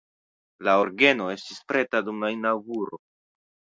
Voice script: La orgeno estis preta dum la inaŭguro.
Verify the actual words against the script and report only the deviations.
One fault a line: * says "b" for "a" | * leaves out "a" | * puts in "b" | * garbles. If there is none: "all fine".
all fine